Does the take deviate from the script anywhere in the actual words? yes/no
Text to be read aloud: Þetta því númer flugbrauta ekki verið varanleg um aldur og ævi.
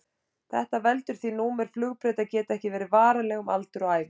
yes